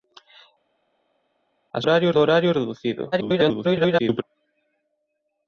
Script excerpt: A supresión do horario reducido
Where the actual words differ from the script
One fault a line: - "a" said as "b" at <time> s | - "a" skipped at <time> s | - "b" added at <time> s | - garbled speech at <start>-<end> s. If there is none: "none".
- "supresión" said as "horario" at 1.8 s
- garbled speech at 3.1-4.2 s